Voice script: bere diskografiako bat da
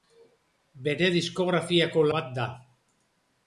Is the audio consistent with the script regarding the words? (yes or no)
yes